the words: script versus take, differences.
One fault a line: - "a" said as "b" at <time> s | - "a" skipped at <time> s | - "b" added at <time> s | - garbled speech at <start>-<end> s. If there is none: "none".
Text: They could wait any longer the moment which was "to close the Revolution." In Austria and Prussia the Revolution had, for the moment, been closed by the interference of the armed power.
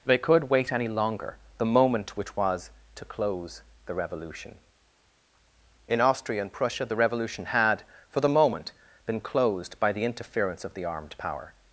none